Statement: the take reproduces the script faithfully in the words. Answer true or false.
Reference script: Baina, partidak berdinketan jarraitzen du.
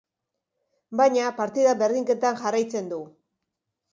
true